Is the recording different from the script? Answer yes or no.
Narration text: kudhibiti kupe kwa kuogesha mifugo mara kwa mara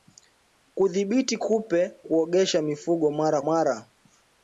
yes